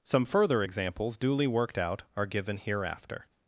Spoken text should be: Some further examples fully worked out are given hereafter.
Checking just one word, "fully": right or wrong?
wrong